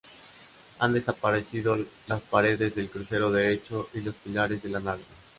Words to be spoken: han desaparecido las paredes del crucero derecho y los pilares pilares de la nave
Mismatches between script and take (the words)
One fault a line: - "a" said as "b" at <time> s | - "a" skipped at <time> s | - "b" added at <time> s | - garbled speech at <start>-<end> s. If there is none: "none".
- "pilares" skipped at 4.6 s